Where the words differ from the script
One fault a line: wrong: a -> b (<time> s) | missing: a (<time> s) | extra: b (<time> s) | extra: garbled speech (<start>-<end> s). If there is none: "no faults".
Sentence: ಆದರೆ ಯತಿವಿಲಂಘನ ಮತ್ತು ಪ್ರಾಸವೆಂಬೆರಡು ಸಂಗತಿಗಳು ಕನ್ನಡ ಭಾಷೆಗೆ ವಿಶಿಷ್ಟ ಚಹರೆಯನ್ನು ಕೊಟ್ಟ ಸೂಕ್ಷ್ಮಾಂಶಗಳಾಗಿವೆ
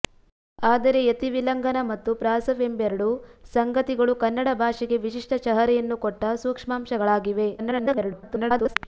extra: garbled speech (7.6-8.8 s)